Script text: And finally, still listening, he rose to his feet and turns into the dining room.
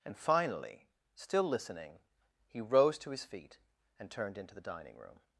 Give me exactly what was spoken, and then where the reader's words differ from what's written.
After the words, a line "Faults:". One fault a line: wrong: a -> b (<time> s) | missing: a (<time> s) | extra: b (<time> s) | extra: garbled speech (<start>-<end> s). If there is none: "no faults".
And finally, still listening, he rose to his feet and turned into the dining room.
Faults:
wrong: turns -> turned (4.1 s)